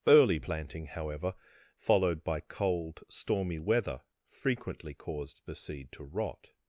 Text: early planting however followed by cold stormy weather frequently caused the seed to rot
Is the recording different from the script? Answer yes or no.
no